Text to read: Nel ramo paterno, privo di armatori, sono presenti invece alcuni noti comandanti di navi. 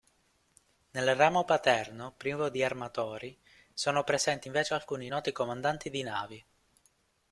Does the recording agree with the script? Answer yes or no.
yes